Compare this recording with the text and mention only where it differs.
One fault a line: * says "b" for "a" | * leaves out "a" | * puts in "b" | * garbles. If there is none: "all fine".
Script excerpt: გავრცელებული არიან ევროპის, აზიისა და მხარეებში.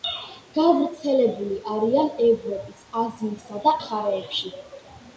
all fine